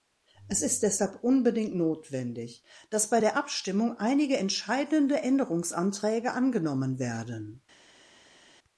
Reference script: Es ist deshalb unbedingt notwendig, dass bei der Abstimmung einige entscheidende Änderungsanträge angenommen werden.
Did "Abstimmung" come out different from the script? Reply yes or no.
no